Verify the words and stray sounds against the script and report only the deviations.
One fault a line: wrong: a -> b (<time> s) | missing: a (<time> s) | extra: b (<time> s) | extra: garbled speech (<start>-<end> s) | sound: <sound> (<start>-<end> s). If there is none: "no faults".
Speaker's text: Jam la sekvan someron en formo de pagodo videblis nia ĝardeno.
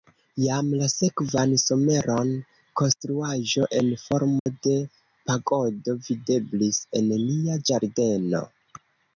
extra: konstruaĵo (2.8 s)
sound: dropout (4.4-4.5 s)
extra: en (7.0 s)